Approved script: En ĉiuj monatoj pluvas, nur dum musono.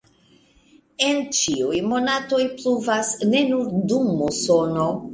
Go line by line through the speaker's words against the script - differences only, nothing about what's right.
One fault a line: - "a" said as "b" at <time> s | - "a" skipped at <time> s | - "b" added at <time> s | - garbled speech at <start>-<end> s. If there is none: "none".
- "ne" added at 3.3 s